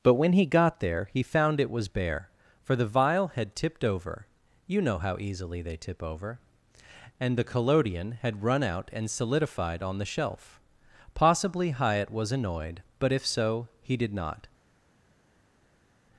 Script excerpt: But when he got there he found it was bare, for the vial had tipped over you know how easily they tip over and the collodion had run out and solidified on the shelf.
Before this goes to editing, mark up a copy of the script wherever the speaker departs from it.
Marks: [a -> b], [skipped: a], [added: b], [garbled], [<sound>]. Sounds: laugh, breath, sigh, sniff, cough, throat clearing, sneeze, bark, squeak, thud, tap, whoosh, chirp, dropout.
But when he got there he found it was bare, for the vial had tipped over you know how easily they tip over and the collodion had run out and solidified on the shelf. [added: Possibly Hyatt was annoyed but if so he did not]